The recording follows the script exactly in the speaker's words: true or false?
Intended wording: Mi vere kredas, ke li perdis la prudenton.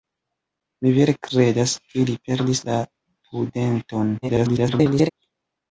false